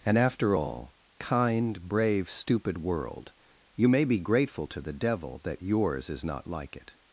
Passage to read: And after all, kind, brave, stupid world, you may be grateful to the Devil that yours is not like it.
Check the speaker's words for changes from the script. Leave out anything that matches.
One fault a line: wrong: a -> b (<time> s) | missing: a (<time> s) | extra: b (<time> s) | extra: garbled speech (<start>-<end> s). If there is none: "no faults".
no faults